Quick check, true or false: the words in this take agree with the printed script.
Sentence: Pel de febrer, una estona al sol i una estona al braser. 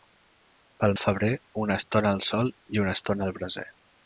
true